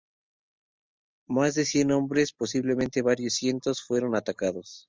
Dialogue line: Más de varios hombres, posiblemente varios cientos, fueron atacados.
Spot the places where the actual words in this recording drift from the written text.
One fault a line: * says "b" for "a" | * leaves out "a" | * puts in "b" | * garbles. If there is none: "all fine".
* says "cien" for "varios"